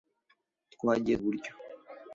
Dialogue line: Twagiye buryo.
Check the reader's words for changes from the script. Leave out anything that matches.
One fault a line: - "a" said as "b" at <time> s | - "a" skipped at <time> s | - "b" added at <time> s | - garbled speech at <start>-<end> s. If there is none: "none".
none